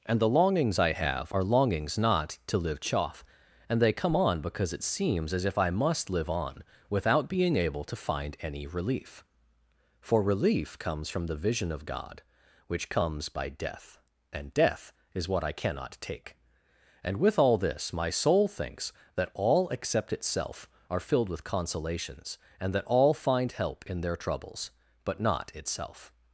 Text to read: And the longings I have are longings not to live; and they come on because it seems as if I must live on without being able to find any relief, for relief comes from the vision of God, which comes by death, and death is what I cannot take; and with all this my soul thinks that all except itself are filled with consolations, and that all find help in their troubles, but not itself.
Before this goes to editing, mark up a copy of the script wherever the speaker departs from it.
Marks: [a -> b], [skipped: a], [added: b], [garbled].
And the longings I have are longings not to live; [added: chaff] and they come on because it seems as if I must live on without being able to find any relief, for relief comes from the vision of God, which comes by death, and death is what I cannot take; and with all this my soul thinks that all except itself are filled with consolations, and that all find help in their troubles, but not itself.